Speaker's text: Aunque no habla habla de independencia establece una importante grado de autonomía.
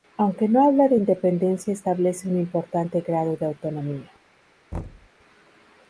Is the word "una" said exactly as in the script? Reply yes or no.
no